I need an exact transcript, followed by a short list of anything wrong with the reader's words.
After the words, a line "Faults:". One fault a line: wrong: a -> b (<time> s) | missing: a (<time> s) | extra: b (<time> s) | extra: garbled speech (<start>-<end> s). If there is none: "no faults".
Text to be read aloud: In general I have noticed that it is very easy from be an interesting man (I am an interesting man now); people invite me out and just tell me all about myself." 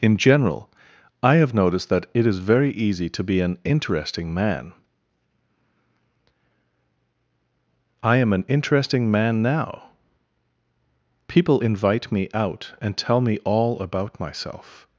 In general I have noticed that it is very easy to be an interesting man (I am an interesting man now); people invite me out and tell me all about myself."
Faults:
wrong: from -> to (3.1 s)
missing: just (13.0 s)